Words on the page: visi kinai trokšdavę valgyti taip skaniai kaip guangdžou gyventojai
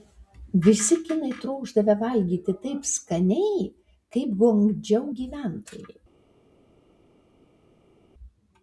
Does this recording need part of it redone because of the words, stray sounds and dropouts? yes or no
no